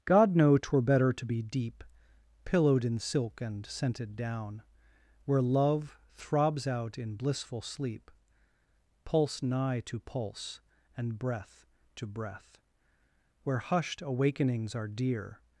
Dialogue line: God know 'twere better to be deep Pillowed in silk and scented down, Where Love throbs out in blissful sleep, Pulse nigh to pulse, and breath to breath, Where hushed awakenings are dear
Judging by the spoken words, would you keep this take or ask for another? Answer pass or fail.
pass